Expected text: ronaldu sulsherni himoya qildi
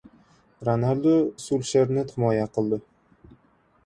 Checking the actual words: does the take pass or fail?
pass